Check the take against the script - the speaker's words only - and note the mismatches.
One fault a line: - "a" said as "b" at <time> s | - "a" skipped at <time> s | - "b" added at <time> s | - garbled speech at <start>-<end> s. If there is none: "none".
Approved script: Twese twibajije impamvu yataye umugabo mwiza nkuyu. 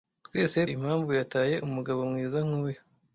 - "twibajije" skipped at 0.6 s